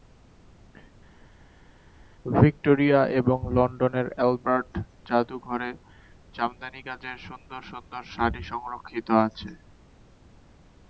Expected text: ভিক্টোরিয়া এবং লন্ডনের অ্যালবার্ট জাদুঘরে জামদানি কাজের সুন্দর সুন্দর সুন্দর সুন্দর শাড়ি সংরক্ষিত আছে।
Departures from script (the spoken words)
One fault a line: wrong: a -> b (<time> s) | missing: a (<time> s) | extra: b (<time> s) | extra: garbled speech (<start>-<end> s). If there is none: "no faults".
missing: সুন্দর সুন্দর (8.0 s)